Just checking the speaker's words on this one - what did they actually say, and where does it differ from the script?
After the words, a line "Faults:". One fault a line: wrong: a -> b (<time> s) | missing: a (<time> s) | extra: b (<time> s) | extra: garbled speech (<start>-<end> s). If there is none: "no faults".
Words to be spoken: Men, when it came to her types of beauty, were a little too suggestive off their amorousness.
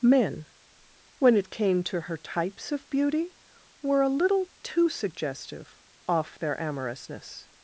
Men, when it came to her types of beauty, were a little too suggestive off their amorousness.
Faults:
no faults